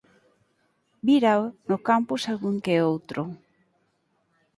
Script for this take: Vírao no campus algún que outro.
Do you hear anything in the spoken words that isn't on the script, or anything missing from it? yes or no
no